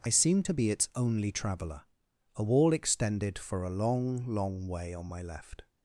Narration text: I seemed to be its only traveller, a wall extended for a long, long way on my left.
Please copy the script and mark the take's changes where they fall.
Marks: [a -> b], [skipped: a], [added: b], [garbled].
I seemed to be its only traveller, a wall extended for a long, long way on my left.